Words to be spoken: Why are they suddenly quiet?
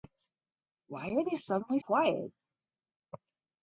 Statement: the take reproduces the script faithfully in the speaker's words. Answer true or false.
true